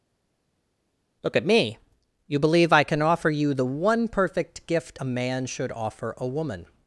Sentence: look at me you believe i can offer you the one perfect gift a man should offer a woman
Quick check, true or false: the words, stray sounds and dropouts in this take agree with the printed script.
true